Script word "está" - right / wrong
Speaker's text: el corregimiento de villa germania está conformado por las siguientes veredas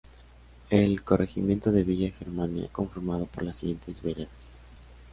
wrong